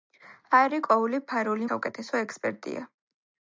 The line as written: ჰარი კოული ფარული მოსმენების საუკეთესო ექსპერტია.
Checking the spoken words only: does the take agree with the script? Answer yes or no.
no